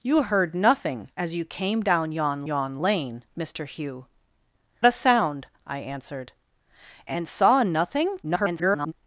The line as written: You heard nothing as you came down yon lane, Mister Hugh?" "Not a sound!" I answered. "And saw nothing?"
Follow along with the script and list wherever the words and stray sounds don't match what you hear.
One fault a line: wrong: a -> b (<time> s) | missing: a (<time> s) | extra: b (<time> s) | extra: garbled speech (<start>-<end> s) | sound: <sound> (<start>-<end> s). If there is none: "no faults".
extra: yon (2.4 s)
missing: Not (4.1 s)
extra: garbled speech (8.2-8.9 s)